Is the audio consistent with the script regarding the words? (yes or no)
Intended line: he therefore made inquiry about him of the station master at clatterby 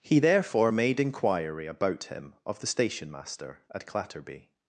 yes